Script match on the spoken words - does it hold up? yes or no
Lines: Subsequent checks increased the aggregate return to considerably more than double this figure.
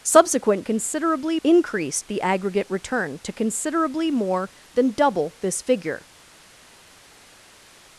no